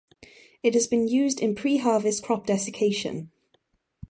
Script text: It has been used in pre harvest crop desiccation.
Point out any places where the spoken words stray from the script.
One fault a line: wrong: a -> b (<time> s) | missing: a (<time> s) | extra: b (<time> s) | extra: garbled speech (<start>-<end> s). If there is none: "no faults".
no faults